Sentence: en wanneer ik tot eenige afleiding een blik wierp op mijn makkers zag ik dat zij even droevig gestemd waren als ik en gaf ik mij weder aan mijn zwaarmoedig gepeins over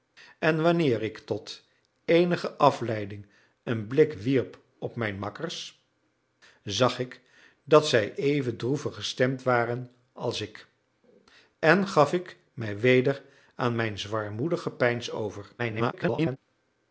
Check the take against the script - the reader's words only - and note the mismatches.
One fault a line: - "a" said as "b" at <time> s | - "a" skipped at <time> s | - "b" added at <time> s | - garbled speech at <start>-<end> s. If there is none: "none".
- garbled speech at 15.6-16.4 s